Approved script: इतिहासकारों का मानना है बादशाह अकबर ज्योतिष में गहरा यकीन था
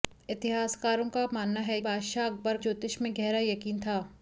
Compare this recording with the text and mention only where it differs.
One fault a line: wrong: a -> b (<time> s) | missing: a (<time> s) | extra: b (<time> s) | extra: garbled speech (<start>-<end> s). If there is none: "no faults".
no faults